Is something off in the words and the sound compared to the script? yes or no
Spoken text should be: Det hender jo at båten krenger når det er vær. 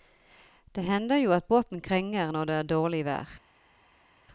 yes